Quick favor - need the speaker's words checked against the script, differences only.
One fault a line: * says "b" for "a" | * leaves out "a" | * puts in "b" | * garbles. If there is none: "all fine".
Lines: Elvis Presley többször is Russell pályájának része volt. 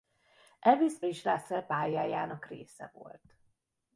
* leaves out "Presley többször"